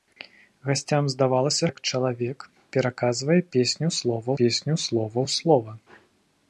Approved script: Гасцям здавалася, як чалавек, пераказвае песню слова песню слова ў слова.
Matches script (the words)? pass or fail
pass